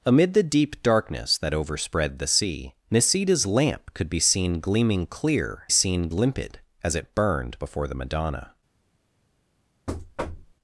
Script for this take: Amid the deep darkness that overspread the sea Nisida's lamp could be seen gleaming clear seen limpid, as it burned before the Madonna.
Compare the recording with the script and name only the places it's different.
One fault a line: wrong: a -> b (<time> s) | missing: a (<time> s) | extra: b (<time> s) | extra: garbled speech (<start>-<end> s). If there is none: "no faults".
no faults